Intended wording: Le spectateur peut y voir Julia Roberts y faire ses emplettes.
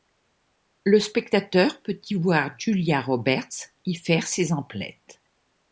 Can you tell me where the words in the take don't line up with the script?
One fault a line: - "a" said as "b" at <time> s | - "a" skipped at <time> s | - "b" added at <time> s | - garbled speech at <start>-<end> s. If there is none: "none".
none